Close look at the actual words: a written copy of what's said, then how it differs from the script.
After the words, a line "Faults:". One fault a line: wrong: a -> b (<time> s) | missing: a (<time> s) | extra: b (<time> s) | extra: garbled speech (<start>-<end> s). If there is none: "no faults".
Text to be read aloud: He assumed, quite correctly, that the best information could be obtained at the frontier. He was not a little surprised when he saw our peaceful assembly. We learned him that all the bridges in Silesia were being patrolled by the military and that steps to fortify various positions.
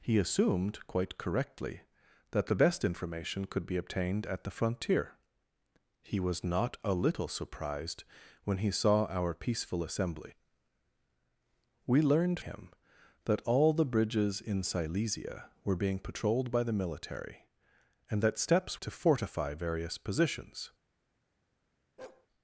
He assumed, quite correctly, that the best information could be obtained at the frontier. He was not a little surprised when he saw our peaceful assembly. We learned him that all the bridges in Silesia were being patrolled by the military and that steps to fortify various positions.
Faults:
no faults